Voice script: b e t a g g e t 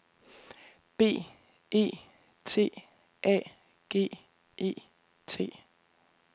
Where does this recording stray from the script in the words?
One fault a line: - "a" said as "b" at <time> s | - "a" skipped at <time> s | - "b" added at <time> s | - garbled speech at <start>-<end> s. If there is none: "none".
- "g" skipped at 4.1 s